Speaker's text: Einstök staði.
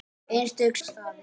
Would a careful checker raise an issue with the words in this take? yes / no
no